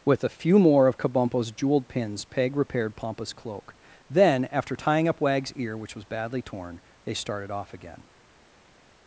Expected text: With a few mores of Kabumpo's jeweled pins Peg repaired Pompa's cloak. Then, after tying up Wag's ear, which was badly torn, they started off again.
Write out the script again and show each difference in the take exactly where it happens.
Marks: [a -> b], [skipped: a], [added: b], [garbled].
With a few [mores -> more] of Kabumpo's jeweled pins Peg repaired Pompa's cloak. Then, after tying up Wag's ear, which was badly torn, they started off again.